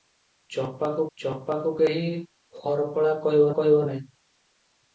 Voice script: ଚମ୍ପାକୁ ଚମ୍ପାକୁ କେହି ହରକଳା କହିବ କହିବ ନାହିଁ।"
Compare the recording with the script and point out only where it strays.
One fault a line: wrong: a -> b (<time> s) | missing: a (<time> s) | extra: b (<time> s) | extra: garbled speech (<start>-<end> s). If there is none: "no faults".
no faults